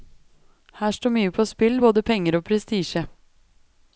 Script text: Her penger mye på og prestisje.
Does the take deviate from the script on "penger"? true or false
true